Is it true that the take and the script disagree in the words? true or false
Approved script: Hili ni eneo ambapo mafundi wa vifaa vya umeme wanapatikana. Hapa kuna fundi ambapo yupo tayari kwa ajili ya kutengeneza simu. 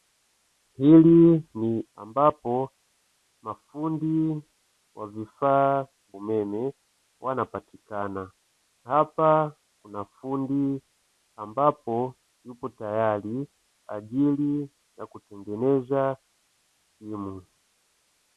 true